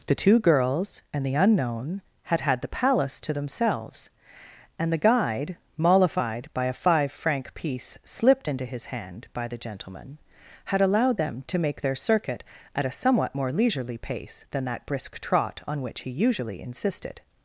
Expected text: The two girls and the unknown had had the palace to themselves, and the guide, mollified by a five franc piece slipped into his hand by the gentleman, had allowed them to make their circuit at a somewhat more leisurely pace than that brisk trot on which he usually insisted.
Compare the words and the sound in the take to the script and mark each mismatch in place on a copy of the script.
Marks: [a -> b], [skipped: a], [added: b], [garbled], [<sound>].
The two girls and the unknown had had the palace to themselves, and the guide, mollified by a five franc piece slipped into his hand by the gentleman, had allowed them to make their circuit at a somewhat more leisurely pace than that brisk trot on which he usually insisted.